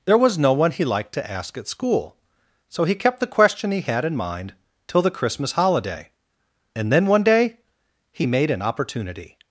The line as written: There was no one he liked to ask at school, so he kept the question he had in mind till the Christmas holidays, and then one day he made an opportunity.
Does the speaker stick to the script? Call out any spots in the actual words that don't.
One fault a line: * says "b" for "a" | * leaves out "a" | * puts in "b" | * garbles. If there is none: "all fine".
* says "holiday" for "holidays"